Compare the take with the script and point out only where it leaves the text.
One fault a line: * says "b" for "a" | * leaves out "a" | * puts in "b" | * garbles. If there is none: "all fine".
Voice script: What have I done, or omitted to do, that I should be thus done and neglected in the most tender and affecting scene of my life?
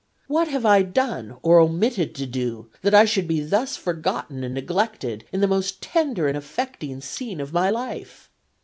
* says "forgotten" for "done"